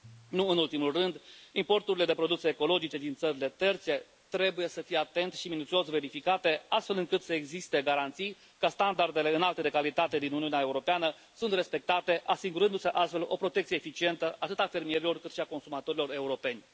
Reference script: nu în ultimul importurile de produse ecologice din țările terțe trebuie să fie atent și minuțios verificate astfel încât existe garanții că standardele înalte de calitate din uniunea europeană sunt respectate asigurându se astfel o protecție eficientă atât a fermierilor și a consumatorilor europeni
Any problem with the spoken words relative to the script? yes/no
yes